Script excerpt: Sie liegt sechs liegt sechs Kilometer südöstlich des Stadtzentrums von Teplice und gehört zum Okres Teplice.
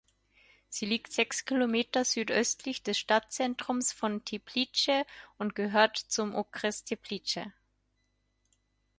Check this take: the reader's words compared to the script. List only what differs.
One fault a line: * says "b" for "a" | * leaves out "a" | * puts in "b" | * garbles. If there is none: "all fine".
* leaves out "liegt sechs"